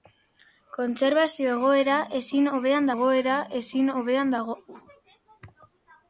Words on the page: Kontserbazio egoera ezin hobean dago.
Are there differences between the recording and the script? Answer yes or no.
yes